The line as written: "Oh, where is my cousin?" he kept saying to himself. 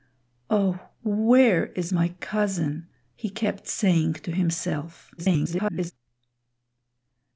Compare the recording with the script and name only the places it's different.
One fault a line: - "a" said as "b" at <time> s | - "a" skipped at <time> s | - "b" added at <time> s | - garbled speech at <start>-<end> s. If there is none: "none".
- garbled speech at 5.2-5.9 s